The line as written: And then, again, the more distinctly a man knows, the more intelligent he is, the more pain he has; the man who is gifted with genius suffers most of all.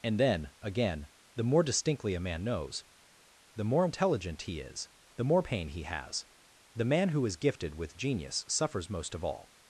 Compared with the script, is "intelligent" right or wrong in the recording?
right